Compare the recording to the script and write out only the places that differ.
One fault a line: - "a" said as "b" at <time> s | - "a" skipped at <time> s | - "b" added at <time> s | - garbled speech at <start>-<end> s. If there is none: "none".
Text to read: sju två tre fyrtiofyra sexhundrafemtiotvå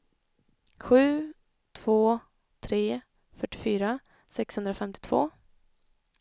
none